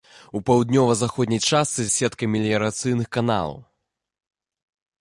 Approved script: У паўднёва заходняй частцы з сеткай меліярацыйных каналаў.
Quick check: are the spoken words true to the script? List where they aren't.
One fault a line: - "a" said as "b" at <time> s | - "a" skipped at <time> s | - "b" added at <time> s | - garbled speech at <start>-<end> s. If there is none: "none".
none